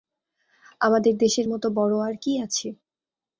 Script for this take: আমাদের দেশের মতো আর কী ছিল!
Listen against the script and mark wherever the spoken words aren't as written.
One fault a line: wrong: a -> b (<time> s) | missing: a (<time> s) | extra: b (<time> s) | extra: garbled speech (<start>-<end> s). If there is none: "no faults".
extra: বড়ো (1.7 s)
wrong: ছিল -> আছে (2.4 s)